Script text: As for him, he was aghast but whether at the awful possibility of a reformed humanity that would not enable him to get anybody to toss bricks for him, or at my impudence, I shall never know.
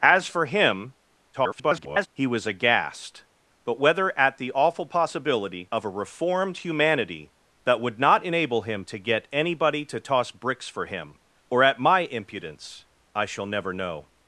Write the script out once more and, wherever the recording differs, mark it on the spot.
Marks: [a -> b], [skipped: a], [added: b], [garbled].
As for him, [garbled] he was aghast but whether at the awful possibility of a reformed humanity that would not enable him to get anybody to toss bricks for him, or at my impudence, I shall never know.